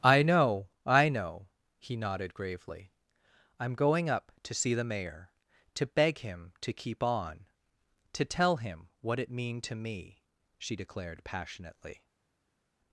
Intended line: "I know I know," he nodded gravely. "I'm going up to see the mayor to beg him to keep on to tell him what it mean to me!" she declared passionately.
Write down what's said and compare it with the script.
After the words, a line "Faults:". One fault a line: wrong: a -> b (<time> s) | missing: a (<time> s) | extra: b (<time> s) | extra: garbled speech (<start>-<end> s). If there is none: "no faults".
"I know I know," he nodded gravely. "I'm going up to see the mayor to beg him to keep on to tell him what it mean to me!" she declared passionately.
Faults:
no faults